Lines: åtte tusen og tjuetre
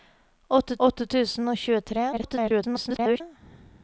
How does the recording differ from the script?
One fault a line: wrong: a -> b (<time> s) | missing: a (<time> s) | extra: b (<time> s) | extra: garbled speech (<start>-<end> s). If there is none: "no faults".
extra: åtte (0.9 s)
extra: garbled speech (2.1-3.2 s)